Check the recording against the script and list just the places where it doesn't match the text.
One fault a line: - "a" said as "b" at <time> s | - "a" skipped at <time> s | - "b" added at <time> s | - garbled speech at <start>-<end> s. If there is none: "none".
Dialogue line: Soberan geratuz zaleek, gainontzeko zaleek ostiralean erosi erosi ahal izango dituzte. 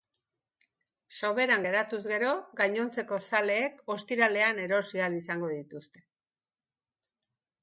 - "zaleek" said as "gero" at 2.1 s
- "erosi" skipped at 5.0 s